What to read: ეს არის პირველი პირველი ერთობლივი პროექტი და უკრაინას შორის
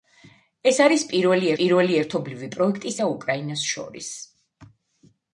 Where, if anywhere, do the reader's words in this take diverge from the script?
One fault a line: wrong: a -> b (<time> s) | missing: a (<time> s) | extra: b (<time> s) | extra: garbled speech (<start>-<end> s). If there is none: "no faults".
no faults